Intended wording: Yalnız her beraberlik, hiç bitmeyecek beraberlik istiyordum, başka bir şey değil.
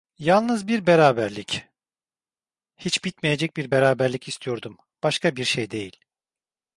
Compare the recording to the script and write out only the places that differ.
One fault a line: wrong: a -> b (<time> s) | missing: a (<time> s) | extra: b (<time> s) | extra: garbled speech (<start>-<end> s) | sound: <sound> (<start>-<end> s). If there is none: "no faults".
wrong: her -> bir (0.7 s)
extra: bir (3.6 s)